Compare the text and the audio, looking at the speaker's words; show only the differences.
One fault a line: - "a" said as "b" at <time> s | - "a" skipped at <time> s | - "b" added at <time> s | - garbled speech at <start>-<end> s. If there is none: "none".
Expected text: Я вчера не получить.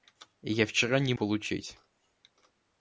none